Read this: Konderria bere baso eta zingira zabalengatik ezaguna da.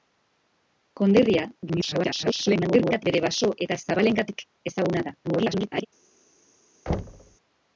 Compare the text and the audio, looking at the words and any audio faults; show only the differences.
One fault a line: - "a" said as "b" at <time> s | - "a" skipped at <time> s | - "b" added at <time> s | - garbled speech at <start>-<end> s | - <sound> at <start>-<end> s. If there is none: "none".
- garbled speech at 1.7-3.0 s
- "zingira" skipped at 3.8 s
- garbled speech at 5.2-5.9 s
- thud at 6.9-7.4 s